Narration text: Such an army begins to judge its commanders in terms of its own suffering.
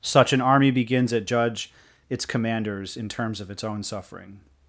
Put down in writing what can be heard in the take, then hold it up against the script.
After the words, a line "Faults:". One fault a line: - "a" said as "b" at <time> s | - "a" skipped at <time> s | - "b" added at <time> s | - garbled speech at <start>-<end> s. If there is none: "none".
Such an army begins at judge its commanders in terms of its own suffering.
Faults:
- "to" said as "at" at 1.1 s